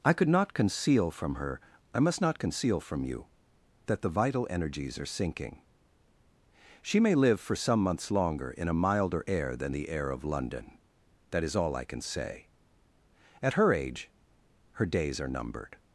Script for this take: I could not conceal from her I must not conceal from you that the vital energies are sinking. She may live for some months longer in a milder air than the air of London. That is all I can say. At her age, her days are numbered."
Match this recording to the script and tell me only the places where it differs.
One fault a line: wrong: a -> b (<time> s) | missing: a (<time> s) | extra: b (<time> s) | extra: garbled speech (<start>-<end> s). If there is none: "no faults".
no faults